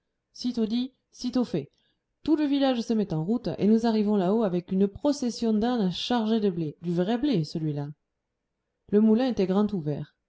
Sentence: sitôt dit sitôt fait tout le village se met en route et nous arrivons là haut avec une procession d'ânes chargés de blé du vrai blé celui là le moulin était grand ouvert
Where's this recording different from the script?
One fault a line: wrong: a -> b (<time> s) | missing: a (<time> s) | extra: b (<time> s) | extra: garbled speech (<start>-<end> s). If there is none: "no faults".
no faults